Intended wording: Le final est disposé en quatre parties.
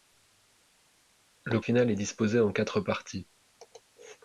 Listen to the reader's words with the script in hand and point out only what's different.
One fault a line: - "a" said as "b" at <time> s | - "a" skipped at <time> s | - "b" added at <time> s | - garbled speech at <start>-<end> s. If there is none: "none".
none